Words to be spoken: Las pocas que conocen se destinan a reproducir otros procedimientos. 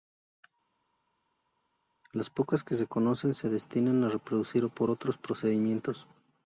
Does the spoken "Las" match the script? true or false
true